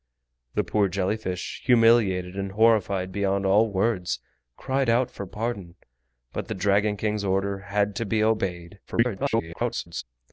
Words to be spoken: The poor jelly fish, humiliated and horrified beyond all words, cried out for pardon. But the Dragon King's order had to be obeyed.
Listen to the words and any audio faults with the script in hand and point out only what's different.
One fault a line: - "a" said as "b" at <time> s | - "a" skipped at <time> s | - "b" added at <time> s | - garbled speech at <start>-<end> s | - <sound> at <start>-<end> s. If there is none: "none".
- garbled speech at 8.9-10.0 s